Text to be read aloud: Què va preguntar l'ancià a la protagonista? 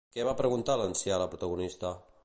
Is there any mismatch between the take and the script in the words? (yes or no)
no